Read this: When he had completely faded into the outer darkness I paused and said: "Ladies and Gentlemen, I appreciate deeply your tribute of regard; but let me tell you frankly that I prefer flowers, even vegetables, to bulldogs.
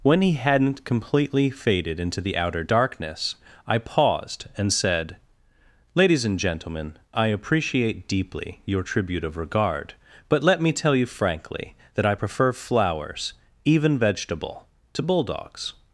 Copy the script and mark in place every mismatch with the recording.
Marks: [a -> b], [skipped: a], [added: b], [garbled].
When he [had -> hadn't] completely faded into the outer darkness I paused and said: "Ladies and Gentlemen, I appreciate deeply your tribute of regard; but let me tell you frankly that I prefer flowers, even [vegetables, -> vegetable] to bulldogs.